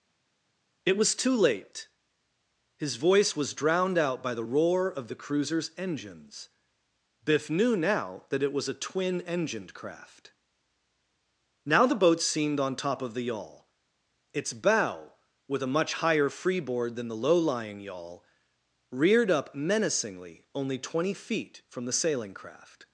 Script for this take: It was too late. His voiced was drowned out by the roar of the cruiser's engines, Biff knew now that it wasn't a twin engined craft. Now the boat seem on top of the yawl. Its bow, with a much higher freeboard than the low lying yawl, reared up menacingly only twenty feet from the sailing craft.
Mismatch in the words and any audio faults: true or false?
true